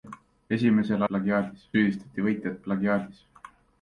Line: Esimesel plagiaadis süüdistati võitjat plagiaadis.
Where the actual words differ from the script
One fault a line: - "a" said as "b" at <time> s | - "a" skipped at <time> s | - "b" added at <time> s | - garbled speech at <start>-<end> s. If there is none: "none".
none